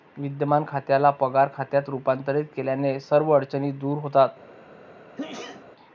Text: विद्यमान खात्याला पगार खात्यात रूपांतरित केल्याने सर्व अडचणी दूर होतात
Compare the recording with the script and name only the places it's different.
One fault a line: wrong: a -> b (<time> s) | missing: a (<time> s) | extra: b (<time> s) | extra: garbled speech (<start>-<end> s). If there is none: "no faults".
no faults